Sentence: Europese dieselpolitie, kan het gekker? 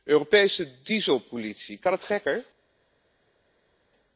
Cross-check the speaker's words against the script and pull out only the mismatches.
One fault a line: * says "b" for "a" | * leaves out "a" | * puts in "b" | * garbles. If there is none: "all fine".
all fine